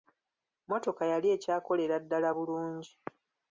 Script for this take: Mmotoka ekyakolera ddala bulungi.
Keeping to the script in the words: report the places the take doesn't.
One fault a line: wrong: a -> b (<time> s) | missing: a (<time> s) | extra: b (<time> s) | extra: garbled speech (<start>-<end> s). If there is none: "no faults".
extra: yali (1.1 s)